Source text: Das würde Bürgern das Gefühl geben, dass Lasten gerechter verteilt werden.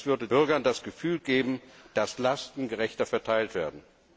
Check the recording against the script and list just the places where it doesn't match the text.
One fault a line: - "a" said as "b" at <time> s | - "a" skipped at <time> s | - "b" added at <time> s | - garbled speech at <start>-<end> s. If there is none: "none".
none